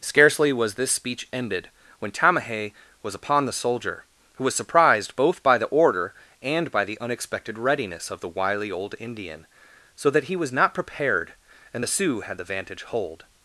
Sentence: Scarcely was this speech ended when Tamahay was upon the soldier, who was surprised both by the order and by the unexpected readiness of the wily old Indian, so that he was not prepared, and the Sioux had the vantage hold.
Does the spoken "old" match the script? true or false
true